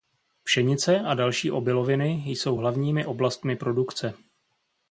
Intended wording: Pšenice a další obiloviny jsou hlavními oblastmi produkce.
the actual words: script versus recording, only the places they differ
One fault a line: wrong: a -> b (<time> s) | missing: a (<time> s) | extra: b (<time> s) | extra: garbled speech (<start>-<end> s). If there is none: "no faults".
no faults